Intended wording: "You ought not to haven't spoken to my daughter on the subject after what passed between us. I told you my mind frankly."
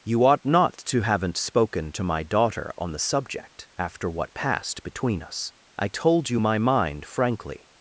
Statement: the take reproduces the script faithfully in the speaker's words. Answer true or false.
true